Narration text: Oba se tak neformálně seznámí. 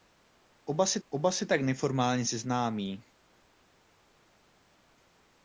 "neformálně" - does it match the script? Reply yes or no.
yes